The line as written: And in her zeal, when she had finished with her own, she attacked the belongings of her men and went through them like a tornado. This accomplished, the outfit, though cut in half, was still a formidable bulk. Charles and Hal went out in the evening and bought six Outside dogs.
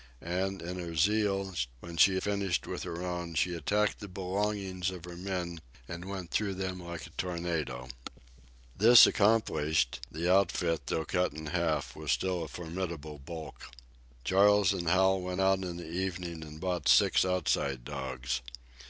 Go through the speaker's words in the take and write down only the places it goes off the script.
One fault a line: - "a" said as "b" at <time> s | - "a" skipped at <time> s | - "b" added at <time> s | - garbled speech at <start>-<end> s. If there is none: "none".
- "had" skipped at 2.2 s